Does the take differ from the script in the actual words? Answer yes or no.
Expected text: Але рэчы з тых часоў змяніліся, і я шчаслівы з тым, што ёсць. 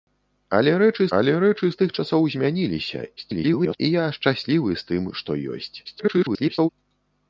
yes